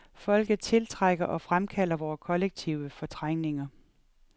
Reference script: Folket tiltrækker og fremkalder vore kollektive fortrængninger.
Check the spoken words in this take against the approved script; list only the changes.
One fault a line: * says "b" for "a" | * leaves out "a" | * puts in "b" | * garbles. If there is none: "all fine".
all fine